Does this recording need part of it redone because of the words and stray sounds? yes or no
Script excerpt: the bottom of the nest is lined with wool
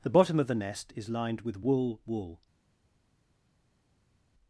yes